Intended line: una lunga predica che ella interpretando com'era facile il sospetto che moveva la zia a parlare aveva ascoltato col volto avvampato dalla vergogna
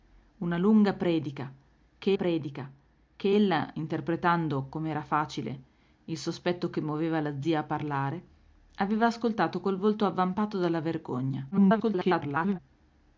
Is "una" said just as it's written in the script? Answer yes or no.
yes